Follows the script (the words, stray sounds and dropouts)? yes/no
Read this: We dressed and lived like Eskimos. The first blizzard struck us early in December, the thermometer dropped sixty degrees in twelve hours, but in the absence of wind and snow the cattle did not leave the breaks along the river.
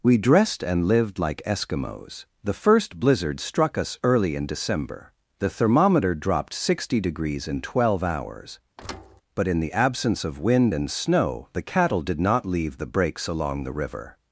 no